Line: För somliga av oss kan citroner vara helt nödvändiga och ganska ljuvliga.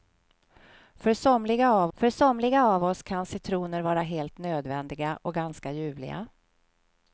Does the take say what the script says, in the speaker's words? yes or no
no